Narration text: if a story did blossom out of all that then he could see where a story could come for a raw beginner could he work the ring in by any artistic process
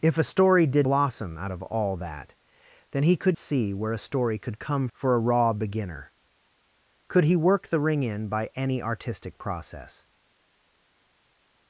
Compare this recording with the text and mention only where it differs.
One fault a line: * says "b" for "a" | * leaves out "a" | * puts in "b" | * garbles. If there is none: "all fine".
all fine